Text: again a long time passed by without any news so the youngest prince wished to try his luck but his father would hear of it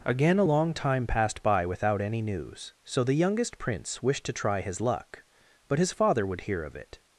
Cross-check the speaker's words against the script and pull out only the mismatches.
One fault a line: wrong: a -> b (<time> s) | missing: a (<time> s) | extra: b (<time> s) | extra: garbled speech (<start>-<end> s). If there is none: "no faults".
no faults